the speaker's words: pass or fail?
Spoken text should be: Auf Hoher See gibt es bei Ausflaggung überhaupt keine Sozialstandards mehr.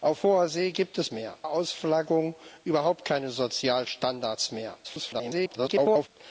fail